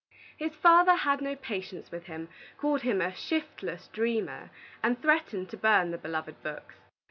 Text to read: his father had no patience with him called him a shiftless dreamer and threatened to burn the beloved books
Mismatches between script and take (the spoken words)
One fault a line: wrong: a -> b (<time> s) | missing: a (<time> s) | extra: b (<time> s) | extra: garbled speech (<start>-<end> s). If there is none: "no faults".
no faults